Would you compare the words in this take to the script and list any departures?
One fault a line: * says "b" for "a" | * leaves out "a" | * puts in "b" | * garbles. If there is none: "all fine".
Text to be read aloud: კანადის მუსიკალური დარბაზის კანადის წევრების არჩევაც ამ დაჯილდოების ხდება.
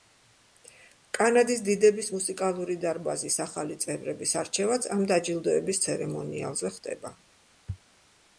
* puts in "დიდების"
* says "ახალი" for "კანადის"
* puts in "ცერემონიალზე"